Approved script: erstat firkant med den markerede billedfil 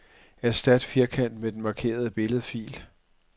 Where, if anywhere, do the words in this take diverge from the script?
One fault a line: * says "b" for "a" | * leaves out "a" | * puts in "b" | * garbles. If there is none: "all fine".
all fine